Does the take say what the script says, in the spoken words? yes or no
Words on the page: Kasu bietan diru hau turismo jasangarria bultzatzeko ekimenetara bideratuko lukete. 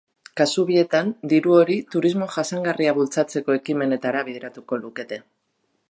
no